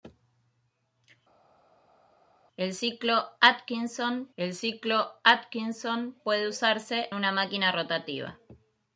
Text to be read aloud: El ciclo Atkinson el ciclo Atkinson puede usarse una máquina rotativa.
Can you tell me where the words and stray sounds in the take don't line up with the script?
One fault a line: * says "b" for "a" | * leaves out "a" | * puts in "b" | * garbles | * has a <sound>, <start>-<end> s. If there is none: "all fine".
all fine